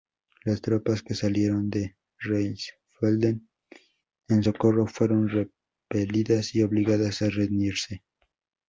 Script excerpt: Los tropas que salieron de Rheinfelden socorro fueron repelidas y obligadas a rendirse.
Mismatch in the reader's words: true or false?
true